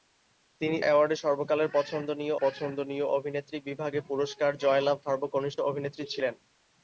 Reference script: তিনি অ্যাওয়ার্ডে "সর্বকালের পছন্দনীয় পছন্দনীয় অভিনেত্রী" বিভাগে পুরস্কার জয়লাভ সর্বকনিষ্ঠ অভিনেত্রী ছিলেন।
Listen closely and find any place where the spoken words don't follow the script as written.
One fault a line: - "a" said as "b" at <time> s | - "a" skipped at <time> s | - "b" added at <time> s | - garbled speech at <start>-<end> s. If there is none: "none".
none